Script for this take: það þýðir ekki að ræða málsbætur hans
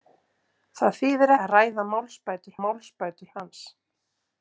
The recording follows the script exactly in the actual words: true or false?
false